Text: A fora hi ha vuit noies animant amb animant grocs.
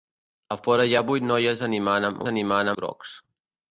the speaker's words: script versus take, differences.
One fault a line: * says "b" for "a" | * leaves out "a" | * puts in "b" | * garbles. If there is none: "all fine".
all fine